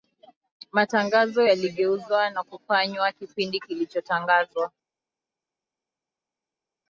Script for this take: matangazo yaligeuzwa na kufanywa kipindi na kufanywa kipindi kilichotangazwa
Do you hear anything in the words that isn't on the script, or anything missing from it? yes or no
yes